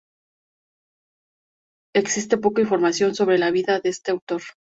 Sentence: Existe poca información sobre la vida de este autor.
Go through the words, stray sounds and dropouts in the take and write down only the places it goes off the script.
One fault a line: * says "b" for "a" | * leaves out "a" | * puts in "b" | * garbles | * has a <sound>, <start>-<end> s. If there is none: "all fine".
all fine